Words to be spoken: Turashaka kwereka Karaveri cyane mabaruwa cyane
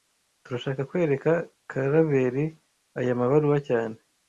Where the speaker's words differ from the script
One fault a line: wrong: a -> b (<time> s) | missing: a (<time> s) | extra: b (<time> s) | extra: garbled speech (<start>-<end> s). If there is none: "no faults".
wrong: cyane -> aya (3.0 s)